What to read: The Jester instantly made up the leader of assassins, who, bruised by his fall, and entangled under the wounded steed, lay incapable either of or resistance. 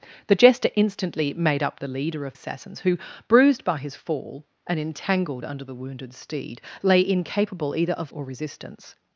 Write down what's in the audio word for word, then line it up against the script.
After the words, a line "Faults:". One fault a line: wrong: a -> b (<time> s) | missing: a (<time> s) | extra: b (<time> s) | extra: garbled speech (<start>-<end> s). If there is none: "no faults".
The Jester instantly made up the leader of assassins, who, bruised by his fall, and entangled under the wounded steed, lay incapable either of or resistance.
Faults:
no faults